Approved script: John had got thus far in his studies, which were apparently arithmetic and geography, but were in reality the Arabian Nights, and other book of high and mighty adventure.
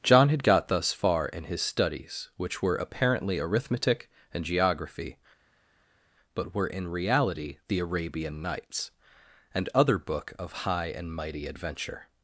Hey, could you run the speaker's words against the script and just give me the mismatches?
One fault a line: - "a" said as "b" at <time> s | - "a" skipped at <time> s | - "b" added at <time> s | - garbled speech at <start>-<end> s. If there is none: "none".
none